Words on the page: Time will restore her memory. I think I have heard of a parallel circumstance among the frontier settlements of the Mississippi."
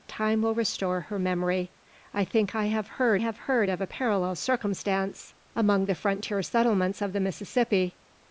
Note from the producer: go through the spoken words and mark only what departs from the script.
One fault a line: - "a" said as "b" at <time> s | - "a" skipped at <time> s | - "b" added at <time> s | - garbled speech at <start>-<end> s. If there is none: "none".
- "have heard" added at 3.2 s